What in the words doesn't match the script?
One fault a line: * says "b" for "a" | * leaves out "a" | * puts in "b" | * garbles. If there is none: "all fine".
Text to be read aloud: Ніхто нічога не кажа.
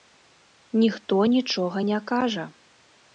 all fine